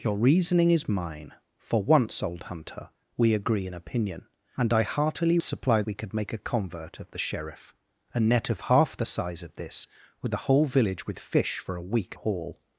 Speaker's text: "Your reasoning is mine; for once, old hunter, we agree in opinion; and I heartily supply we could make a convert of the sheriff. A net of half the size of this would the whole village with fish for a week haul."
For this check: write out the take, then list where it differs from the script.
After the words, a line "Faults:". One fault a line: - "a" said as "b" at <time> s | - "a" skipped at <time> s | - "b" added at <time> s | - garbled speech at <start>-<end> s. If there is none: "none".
"Your reasoning is mine; for once, old hunter, we agree in opinion; and I heartily supply we could make a convert of the sheriff. A net of half the size of this would the whole village with fish for a week haul."
Faults:
none